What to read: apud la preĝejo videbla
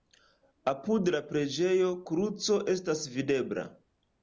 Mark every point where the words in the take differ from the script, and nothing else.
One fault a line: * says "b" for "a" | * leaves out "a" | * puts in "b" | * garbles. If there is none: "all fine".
* puts in "kruco estas"